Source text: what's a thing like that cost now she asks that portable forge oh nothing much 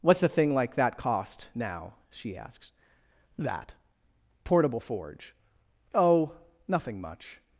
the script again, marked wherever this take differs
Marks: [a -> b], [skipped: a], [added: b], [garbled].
what's a thing like that cost now she asks that portable forge oh nothing much